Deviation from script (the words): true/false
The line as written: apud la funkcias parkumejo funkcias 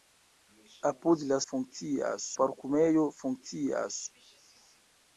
false